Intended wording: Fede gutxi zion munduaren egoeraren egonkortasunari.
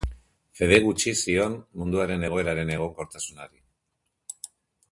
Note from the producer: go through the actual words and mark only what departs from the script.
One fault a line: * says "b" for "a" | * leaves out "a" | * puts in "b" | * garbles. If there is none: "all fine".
all fine